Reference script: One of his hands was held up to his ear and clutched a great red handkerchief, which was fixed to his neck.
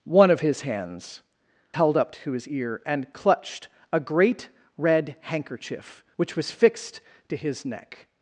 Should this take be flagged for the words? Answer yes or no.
yes